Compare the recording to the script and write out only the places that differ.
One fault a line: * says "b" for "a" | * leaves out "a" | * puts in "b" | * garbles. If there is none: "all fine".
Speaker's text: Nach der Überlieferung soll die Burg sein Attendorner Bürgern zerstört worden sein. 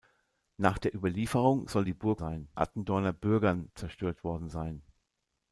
all fine